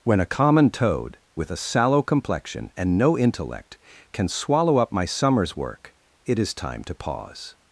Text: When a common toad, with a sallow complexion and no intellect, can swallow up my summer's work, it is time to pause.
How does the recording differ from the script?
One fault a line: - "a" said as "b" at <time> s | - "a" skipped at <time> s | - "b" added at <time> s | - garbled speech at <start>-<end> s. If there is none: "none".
none